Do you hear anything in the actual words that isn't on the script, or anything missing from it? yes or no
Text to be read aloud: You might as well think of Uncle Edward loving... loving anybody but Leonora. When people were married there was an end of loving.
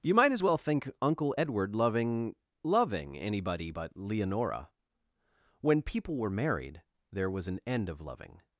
yes